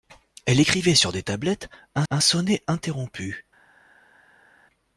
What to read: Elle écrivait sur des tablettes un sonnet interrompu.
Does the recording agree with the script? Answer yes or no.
no